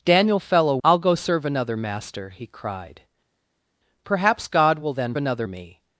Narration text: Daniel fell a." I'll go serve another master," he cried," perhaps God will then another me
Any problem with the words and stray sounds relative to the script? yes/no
no